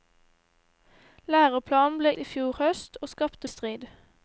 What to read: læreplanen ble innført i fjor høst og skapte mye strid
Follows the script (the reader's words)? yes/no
no